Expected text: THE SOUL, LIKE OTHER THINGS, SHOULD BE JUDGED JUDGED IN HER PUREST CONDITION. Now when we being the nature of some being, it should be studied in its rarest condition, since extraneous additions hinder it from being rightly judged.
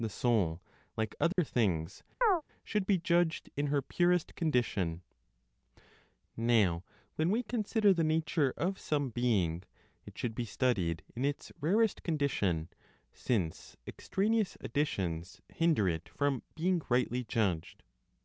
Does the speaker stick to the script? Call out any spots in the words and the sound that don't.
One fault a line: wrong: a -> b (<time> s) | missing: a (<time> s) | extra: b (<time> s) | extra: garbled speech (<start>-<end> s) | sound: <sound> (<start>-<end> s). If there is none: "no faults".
sound: dropout (1.3-1.4 s)
sound: chirp (2.2-2.4 s)
missing: JUDGED (3.5 s)
wrong: being -> consider (7.4 s)